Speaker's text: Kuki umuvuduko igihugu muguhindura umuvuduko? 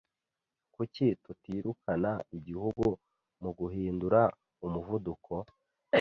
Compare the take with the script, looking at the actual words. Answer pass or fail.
fail